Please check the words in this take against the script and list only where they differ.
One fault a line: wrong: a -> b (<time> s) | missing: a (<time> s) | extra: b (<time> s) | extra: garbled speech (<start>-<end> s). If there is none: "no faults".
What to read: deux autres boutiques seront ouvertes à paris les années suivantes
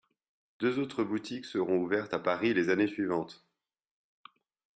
no faults